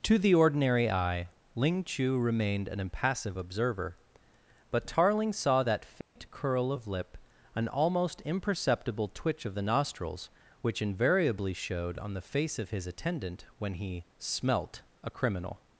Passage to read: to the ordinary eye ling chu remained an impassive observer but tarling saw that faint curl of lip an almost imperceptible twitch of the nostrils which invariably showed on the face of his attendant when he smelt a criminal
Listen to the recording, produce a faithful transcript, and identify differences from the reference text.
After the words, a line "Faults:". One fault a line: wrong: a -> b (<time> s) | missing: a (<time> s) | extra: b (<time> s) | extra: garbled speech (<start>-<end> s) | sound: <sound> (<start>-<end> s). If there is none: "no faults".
to the ordinary eye ling chu remained an impassive observer but tarling saw that faint curl of lip an almost imperceptible twitch of the nostrils which invariably showed on the face of his attendant when he smelt a criminal
Faults:
sound: dropout (6.0-6.2 s)